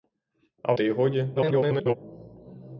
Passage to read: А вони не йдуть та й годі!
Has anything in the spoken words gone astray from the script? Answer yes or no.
yes